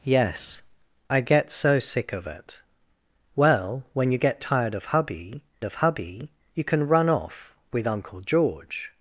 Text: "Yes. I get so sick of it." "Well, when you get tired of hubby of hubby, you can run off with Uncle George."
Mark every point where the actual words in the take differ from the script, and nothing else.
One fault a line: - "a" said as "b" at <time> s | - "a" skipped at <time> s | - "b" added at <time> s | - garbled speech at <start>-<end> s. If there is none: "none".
none